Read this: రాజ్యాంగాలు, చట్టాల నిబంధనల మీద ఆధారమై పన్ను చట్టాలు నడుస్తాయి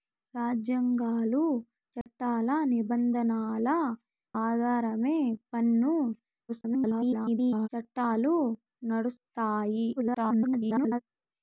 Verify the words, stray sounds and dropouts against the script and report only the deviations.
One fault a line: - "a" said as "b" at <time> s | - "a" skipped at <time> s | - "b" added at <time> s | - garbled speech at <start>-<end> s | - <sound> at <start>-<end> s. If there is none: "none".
- dropout at 2.0-2.1 s
- "మీద" skipped at 3.7 s
- garbled speech at 6.5-7.7 s
- garbled speech at 10.0-11.0 s